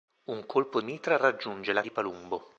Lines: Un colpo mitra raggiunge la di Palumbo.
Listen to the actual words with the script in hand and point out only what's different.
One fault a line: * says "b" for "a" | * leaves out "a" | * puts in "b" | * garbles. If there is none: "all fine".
all fine